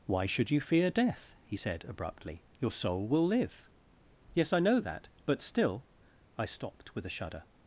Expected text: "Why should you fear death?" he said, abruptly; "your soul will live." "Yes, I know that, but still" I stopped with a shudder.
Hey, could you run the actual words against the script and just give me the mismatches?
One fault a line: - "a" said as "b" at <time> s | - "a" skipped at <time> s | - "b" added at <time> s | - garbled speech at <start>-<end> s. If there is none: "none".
none